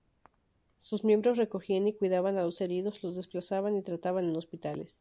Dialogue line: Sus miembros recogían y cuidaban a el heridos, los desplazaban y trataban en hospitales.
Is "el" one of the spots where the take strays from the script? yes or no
yes